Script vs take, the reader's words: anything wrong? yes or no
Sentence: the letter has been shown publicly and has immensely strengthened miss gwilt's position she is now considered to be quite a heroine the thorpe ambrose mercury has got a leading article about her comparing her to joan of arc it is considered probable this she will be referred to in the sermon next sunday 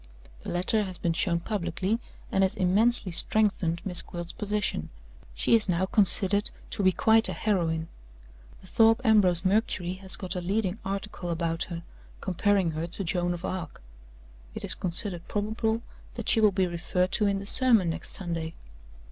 yes